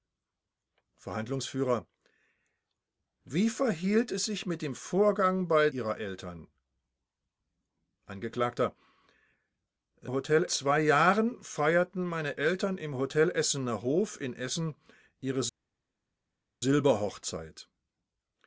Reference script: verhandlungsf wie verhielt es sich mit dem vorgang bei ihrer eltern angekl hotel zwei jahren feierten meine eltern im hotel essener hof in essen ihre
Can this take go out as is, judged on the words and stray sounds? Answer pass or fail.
pass